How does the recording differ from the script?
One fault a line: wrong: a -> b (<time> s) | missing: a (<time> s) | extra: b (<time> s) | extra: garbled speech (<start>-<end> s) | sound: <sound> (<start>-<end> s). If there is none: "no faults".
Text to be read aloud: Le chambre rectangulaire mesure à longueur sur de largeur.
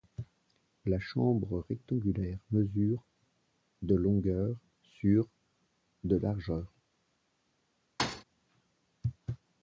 wrong: Le -> La (0.8 s)
wrong: à -> de (3.8 s)
sound: thud (8.0-8.2 s)